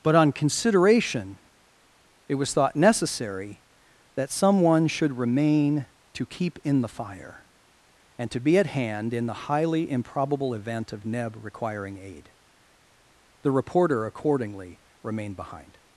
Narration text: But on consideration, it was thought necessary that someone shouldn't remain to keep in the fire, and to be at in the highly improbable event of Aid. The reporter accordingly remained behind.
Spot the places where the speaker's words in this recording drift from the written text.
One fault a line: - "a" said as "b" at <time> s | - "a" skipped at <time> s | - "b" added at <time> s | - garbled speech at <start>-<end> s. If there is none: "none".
- "shouldn't" said as "should" at 4.9 s
- "hand" added at 8.7 s
- "Neb requiring" added at 11.1 s